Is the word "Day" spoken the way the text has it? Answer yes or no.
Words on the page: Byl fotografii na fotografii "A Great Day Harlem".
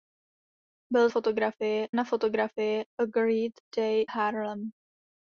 yes